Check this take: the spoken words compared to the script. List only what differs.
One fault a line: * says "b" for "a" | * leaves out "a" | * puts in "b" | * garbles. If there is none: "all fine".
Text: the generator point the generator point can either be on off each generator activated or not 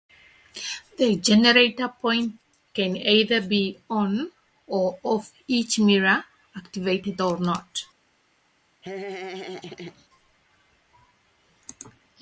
* leaves out "the generator point"
* puts in "or"
* says "mirror" for "generator"